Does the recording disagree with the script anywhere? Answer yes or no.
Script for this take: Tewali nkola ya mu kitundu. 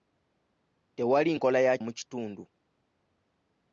no